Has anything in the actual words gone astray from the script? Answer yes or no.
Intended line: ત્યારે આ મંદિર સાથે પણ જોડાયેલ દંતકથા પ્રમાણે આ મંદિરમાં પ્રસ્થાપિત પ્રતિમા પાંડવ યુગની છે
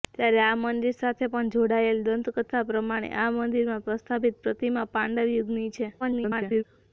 yes